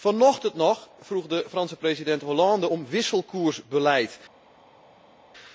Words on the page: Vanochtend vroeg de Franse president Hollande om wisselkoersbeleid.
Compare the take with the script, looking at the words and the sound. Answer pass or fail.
fail